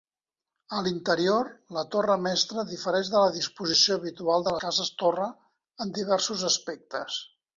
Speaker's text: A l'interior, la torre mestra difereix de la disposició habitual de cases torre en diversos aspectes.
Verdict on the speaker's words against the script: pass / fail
pass